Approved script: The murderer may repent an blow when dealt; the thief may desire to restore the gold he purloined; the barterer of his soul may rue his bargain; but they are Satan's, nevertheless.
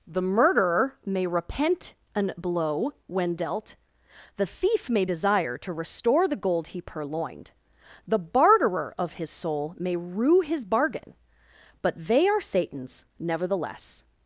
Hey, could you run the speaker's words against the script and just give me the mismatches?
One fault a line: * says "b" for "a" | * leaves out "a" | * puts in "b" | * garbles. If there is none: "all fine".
all fine